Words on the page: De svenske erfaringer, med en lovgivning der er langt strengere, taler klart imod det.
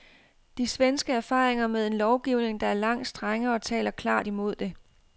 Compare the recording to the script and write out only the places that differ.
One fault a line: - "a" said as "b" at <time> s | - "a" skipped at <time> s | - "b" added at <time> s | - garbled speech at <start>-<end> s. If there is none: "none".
none